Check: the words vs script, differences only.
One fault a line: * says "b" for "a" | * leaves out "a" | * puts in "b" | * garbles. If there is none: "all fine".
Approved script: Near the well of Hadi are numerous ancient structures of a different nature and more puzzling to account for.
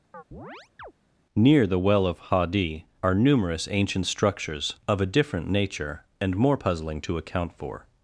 all fine